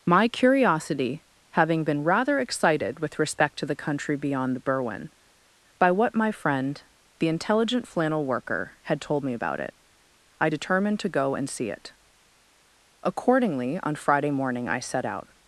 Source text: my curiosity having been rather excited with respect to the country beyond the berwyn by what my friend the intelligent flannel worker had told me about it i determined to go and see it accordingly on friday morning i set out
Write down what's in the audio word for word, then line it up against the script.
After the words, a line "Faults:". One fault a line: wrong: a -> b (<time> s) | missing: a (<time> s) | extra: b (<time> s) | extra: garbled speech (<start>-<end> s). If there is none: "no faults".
my curiosity having been rather excited with respect to the country beyond the berwyn by what my friend the intelligent flannel worker had told me about it i determined to go and see it accordingly on friday morning i set out
Faults:
no faults